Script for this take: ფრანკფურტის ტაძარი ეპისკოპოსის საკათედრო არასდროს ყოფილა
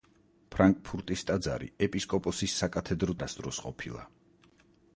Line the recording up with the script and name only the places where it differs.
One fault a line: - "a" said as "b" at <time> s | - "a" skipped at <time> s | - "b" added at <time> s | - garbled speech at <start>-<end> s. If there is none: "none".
none